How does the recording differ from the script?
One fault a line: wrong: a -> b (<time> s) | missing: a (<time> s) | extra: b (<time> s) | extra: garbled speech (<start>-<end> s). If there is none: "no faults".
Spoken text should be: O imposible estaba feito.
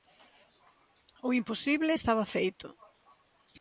no faults